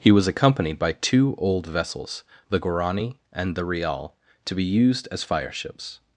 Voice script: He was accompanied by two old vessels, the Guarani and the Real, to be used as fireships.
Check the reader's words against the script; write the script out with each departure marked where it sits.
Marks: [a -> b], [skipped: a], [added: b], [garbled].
He was accompanied by two old vessels, the Guarani and the Real, to be used as fireships.